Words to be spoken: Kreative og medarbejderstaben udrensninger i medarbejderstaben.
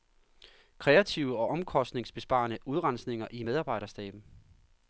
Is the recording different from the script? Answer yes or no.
yes